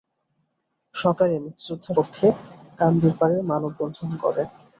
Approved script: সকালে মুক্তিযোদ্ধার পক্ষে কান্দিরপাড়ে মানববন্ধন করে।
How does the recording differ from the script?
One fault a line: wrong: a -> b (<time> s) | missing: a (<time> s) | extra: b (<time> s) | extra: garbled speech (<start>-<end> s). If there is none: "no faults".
no faults